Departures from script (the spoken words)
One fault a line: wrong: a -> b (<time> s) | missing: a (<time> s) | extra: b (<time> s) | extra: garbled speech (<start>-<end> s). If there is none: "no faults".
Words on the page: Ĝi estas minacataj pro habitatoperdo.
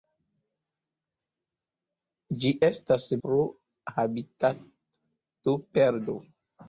missing: minacataj (3.1 s)